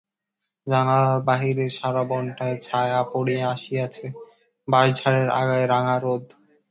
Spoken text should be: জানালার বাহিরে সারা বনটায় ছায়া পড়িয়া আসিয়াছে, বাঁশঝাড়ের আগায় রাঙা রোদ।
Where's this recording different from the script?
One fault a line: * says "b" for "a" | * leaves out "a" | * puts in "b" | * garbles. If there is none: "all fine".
all fine